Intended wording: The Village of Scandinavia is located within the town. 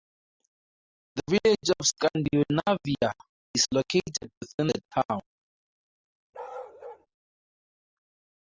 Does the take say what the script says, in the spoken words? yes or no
yes